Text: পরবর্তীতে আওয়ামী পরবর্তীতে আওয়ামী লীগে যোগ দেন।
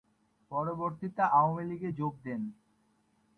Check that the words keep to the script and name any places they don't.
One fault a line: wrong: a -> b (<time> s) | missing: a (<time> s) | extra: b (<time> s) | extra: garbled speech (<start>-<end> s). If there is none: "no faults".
missing: পরবর্তীতে আওয়ামী (1.6 s)